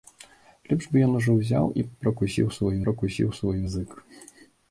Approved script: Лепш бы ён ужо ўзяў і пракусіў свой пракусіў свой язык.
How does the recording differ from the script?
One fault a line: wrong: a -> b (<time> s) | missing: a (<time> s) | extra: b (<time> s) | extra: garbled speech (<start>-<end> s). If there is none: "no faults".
no faults